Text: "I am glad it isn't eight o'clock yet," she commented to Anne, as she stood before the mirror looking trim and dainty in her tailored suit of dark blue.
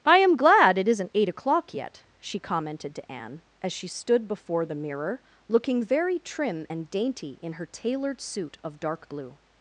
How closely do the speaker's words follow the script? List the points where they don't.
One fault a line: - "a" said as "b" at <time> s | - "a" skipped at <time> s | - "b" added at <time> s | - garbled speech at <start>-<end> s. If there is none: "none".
- "very" added at 5.8 s